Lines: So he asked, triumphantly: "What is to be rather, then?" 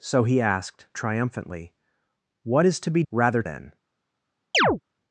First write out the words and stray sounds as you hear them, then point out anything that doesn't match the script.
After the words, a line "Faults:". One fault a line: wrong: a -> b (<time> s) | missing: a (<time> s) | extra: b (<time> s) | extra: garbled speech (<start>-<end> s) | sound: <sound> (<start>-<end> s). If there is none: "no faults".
So he asked, triumphantly: "What is to be rather, then?"
Faults:
sound: chirp (4.5-4.8 s)